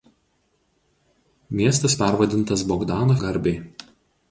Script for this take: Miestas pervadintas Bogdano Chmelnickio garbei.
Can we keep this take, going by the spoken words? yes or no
no